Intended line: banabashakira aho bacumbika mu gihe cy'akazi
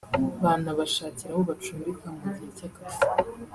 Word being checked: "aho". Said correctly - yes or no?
yes